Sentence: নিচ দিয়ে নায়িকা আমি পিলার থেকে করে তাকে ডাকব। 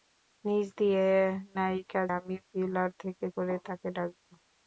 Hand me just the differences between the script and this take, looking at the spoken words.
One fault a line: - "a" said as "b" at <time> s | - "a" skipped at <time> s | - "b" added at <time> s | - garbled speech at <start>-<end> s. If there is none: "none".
none